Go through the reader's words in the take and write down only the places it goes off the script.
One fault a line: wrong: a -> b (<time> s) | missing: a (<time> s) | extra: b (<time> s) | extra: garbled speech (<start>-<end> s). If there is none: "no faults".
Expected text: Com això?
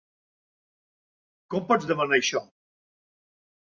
extra: pots demanar (1.7 s)